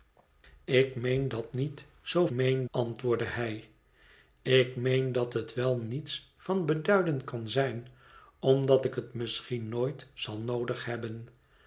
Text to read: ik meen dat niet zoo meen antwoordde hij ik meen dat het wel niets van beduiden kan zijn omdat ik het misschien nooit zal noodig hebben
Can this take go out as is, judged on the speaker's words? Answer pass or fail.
pass